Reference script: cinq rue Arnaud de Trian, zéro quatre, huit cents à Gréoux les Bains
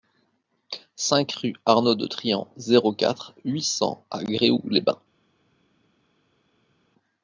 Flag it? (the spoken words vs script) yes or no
no